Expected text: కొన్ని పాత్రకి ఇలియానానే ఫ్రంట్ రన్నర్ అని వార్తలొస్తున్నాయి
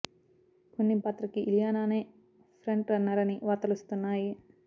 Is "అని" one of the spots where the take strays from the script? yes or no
no